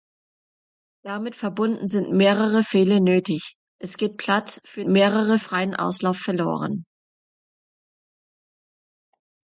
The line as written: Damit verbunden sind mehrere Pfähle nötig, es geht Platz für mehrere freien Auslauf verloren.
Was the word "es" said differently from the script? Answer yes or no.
no